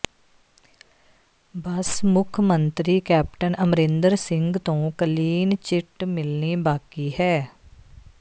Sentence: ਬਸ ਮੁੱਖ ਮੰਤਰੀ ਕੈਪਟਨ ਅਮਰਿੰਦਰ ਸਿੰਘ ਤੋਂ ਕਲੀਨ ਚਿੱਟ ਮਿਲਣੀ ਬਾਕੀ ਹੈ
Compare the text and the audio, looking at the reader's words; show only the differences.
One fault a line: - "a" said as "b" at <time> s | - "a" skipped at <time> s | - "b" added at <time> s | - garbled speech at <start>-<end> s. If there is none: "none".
none